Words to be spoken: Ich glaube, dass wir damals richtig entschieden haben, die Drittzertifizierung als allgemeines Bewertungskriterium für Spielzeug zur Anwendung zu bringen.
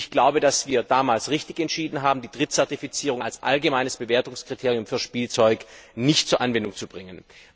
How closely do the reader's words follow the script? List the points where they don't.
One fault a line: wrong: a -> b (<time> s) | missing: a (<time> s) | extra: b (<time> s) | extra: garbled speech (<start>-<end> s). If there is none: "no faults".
extra: nicht (6.0 s)